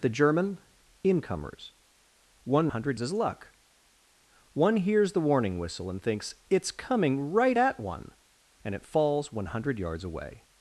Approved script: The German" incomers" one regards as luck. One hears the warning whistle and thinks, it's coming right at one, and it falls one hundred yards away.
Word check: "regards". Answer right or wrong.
wrong